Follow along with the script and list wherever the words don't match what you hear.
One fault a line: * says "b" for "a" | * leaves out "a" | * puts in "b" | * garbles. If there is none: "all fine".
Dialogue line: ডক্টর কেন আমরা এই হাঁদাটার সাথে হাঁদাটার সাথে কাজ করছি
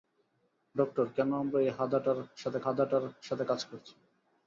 all fine